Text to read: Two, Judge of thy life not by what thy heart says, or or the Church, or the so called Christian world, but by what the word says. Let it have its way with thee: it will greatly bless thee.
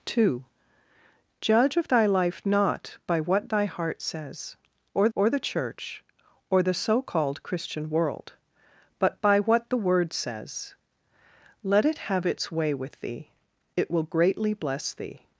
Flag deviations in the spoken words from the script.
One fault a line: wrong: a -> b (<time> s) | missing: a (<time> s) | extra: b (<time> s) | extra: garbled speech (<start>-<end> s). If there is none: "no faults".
no faults